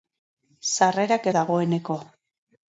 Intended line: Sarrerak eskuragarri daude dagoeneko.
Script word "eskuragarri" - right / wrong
wrong